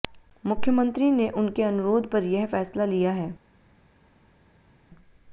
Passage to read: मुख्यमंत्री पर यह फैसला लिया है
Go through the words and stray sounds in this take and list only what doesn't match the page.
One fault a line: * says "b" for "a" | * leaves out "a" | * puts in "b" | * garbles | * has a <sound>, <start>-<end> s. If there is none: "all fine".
* puts in "ने उनके अनुरोध"